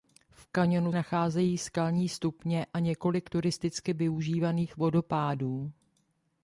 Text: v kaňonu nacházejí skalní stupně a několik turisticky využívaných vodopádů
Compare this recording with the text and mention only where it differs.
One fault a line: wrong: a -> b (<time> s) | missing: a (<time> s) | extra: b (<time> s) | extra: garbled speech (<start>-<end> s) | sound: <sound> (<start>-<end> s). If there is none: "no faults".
no faults